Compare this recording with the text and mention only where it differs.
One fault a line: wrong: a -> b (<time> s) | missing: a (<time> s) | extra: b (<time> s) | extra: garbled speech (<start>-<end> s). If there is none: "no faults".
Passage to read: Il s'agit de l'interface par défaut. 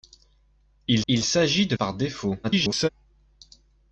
extra: il (1.1 s)
missing: l'interface (1.8 s)
extra: garbled speech (2.4-2.9 s)